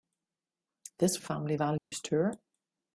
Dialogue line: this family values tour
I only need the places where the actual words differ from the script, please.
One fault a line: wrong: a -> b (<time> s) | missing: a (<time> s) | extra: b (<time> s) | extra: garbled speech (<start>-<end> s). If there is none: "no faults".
no faults